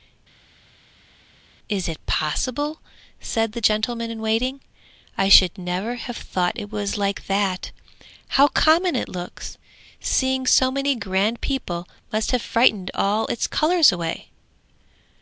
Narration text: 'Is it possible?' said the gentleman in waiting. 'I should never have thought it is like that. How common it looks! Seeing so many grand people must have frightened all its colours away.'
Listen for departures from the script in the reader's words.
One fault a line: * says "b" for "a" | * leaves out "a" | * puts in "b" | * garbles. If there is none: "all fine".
* says "was" for "is"